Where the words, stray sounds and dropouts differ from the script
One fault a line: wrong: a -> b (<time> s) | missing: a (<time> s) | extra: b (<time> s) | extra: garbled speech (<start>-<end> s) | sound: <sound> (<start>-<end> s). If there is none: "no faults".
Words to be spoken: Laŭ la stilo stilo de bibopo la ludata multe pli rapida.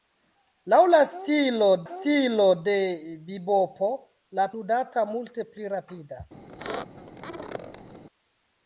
sound: squeak (6.5-8.0 s)